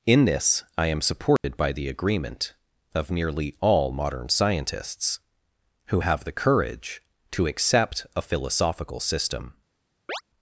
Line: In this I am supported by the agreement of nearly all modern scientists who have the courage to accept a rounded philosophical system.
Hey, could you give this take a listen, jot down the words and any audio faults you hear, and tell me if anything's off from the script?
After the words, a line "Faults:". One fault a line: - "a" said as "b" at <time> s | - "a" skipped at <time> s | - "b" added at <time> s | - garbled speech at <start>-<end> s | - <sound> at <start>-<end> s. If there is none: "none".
In this I am supported by the agreement of nearly all modern scientists who have the courage to accept a philosophical system.
Faults:
- dropout at 1.4-1.4 s
- "rounded" skipped at 8.2 s
- chirp at 10.1-10.2 s